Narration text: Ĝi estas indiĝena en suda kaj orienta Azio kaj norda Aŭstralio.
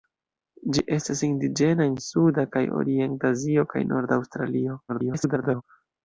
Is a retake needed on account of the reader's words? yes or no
yes